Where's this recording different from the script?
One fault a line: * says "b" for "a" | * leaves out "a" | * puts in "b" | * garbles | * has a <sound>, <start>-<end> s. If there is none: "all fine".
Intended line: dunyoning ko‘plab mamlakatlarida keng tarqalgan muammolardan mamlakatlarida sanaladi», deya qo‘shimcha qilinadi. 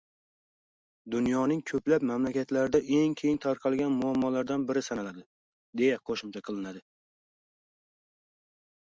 * puts in "eng"
* says "biri" for "mamlakatlarida"